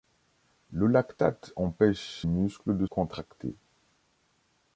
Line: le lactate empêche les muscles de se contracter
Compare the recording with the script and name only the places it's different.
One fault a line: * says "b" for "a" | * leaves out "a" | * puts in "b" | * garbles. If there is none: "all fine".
* leaves out "les"
* leaves out "se"